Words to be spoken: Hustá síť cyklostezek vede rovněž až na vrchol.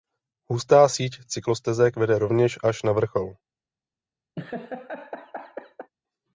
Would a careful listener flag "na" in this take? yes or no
no